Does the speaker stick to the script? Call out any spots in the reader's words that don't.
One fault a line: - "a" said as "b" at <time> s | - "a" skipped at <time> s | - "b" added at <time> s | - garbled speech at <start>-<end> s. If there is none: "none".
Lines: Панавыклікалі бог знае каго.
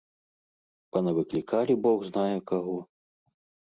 none